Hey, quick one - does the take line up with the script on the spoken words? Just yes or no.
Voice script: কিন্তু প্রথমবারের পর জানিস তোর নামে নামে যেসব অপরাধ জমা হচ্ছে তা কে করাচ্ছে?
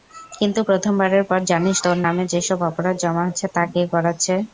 no